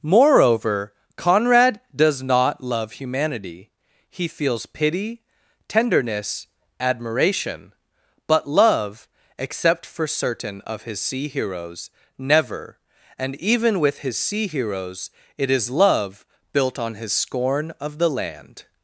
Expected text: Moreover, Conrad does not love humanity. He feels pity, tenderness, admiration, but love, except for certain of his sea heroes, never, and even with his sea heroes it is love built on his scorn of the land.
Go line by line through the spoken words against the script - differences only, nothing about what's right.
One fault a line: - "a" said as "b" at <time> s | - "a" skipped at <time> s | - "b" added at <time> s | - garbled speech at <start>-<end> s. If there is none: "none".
none